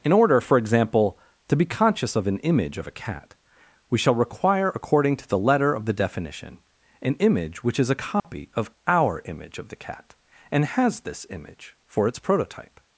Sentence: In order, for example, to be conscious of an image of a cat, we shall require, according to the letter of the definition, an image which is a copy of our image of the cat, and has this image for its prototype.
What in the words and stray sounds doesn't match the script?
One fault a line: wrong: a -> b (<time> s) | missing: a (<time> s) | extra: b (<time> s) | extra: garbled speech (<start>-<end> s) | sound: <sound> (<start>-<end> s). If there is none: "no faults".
sound: dropout (8.2-8.2 s)